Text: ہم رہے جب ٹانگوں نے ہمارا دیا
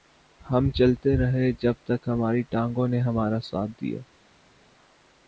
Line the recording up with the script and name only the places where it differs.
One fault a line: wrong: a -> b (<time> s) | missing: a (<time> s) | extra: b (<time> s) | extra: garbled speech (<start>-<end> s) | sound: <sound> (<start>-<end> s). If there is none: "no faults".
extra: چلتے (0.7 s)
extra: تک ہماری (1.8 s)
extra: ساتھ (3.4 s)